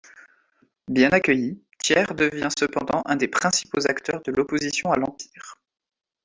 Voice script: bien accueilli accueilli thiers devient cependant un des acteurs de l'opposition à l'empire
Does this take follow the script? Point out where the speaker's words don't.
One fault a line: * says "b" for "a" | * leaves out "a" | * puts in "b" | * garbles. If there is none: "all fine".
* leaves out "accueilli"
* puts in "principaux"